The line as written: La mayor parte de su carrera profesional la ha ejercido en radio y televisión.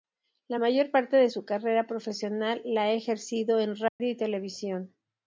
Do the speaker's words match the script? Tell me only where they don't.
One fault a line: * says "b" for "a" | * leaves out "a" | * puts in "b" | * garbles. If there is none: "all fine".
all fine